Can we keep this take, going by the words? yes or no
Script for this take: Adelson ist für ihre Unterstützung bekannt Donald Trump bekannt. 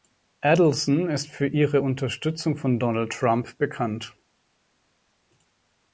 no